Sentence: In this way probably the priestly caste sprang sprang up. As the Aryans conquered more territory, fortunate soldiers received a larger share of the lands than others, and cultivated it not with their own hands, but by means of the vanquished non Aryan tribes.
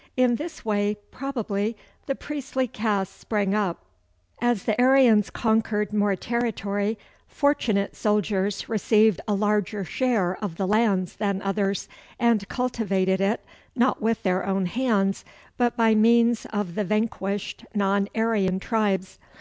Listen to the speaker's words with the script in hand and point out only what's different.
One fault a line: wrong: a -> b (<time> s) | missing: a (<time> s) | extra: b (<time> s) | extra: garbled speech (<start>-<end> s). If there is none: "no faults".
missing: sprang (3.5 s)